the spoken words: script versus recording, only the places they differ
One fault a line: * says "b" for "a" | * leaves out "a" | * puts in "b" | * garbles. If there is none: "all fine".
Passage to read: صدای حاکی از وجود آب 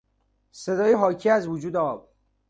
all fine